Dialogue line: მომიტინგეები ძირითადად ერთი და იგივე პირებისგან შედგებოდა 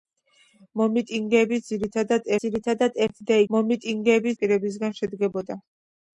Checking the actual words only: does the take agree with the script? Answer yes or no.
no